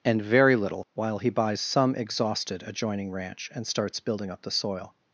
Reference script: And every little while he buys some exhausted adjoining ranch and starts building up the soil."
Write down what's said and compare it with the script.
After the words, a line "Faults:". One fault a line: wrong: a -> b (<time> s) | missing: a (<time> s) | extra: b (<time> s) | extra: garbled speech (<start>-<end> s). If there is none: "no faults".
And very little while he buys some exhausted adjoining ranch and starts building up the soil."
Faults:
wrong: every -> very (0.2 s)